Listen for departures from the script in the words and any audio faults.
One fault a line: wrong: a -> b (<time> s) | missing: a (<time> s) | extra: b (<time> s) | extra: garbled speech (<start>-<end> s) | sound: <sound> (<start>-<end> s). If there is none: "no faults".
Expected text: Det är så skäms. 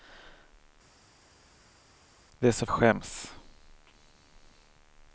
no faults